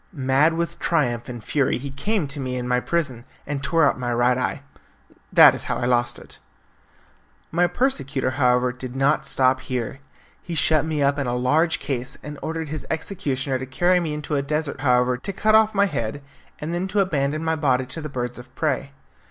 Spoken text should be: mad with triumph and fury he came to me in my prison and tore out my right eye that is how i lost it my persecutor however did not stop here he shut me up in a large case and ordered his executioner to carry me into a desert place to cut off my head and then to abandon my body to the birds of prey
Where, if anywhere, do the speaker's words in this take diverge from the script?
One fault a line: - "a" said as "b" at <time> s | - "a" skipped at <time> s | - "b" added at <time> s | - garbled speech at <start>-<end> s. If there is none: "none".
- "place" said as "however" at 14.8 s